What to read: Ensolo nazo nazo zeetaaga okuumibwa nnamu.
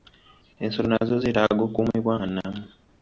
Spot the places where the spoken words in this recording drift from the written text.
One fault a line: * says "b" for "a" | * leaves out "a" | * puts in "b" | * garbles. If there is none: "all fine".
* leaves out "nazo"
* puts in "nga"